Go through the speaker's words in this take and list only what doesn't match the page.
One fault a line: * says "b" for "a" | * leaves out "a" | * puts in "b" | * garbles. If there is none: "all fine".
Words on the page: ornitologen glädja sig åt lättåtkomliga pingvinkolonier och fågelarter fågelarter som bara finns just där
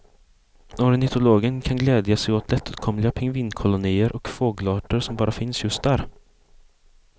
* puts in "kan"
* leaves out "fågelarter"